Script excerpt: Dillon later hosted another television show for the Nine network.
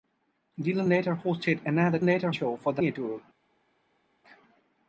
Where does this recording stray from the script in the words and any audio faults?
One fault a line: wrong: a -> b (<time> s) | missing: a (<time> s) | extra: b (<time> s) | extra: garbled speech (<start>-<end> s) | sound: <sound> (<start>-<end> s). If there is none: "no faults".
wrong: television -> later (2.0 s)
missing: Nine (2.8 s)